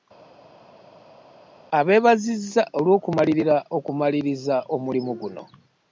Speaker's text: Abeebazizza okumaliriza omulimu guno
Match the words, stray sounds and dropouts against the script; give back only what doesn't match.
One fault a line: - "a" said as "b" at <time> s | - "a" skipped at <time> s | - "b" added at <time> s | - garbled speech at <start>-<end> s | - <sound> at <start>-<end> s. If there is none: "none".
- "olw'okumalirira" added at 2.8 s